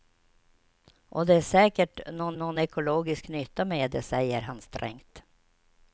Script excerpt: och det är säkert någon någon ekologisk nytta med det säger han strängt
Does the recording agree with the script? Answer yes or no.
yes